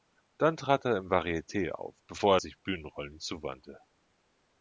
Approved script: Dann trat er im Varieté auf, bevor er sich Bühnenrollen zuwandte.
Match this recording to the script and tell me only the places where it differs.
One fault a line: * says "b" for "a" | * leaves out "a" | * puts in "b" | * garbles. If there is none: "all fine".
all fine